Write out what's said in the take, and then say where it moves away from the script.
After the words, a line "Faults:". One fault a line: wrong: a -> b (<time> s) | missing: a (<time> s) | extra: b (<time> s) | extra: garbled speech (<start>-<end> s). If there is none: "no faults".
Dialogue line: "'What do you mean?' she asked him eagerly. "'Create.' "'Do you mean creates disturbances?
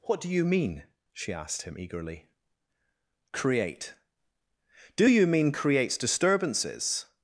"'What do you mean?' she asked him eagerly. "'Create.' "'Do you mean creates disturbances?
Faults:
no faults